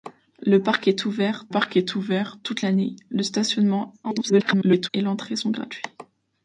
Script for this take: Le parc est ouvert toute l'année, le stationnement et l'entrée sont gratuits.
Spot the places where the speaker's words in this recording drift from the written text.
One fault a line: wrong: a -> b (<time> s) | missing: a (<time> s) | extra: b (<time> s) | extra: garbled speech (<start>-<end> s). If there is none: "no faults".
extra: parc est ouvert (1.5 s)
extra: garbled speech (4.0-4.9 s)